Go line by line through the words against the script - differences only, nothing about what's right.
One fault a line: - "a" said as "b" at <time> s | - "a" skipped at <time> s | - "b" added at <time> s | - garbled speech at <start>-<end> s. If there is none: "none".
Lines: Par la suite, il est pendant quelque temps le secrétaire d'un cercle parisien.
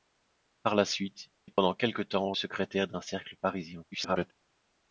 - "il" skipped at 1.3 s
- "le" skipped at 2.3 s
- garbled speech at 3.9-4.3 s